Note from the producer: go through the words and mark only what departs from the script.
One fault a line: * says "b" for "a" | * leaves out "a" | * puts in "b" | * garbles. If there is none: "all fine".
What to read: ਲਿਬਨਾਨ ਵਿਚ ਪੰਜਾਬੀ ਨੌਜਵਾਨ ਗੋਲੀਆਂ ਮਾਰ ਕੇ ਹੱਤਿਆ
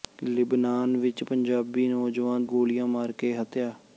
all fine